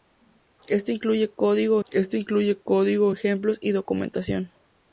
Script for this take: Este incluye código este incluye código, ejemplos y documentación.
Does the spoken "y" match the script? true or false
true